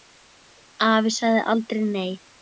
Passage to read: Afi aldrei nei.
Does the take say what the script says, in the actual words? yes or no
no